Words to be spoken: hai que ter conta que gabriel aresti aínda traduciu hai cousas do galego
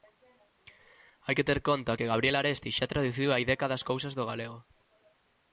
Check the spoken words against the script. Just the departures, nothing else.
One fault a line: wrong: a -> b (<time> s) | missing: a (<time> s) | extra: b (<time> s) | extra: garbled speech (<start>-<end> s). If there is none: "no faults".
wrong: aínda -> xa (2.8 s)
extra: décadas (3.5 s)